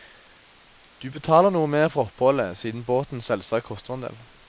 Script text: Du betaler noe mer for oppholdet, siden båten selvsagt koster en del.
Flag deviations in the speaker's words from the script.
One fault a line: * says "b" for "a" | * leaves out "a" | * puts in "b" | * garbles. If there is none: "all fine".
all fine